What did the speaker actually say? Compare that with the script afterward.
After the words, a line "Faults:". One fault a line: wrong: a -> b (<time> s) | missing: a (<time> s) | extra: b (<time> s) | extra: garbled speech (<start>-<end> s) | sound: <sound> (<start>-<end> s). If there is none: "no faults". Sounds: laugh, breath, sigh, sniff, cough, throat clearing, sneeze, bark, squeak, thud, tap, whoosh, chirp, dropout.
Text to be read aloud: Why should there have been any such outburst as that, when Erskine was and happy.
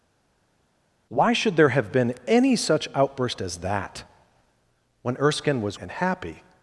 Why should there have been any such outburst as that, when Erskine was and happy.
Faults:
no faults